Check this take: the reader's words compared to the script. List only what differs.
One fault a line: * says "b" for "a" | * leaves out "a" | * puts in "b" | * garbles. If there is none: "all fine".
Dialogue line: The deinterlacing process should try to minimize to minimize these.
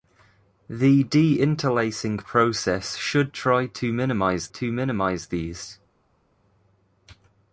all fine